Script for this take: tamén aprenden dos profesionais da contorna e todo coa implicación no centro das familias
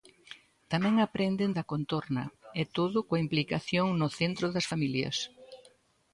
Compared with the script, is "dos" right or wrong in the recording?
wrong